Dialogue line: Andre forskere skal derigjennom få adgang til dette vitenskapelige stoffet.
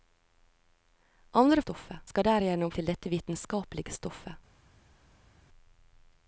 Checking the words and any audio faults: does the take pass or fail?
fail